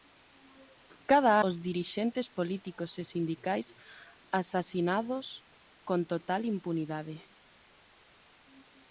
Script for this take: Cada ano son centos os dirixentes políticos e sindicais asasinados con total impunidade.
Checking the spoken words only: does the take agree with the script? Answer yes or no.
no